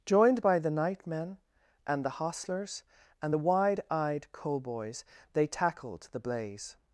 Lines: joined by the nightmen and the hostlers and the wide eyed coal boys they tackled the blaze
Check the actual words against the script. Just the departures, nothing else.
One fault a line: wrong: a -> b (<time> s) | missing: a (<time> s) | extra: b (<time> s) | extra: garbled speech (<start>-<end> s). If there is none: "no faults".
no faults